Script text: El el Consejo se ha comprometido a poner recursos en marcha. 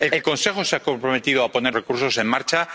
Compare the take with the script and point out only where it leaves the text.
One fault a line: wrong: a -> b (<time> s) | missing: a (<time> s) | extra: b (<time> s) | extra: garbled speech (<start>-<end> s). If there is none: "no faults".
no faults